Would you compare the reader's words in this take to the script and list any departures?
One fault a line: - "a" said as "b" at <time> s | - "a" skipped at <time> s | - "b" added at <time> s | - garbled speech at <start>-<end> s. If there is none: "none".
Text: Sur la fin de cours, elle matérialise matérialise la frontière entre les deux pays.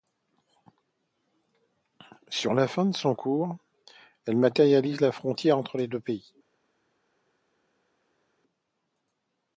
- "son" added at 3.0 s
- "matérialise" skipped at 5.0 s